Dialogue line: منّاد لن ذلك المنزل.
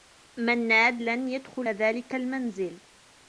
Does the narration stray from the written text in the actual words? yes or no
yes